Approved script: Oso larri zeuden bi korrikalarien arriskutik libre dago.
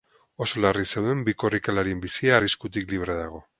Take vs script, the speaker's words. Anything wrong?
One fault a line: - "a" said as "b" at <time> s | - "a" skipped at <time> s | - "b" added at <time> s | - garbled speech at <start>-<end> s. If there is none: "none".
- "bizia" added at 2.1 s